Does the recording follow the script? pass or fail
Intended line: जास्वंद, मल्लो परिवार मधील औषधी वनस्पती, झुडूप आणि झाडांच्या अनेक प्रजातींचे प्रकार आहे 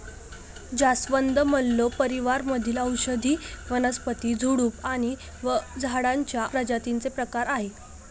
fail